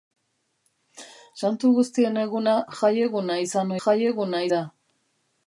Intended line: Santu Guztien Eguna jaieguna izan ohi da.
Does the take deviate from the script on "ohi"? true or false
true